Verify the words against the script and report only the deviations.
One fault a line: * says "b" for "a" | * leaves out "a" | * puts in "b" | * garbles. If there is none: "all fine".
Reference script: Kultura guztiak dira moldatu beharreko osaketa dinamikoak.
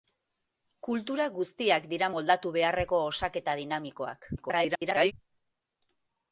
* garbles